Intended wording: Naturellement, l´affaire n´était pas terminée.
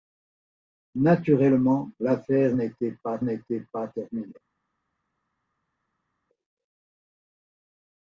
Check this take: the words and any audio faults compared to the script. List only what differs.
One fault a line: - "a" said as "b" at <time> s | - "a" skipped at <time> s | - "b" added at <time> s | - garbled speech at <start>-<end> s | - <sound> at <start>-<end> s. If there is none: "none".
- "n´était pas" added at 3.2 s